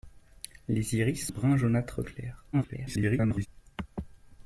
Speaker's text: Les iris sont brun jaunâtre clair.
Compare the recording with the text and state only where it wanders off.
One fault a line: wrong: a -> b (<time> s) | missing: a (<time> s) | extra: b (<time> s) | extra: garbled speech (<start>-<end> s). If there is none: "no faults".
missing: sont (1.3 s)
extra: garbled speech (2.5-3.5 s)